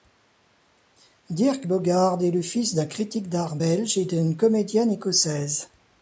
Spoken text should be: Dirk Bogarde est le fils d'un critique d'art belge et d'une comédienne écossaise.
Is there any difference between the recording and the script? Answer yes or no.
no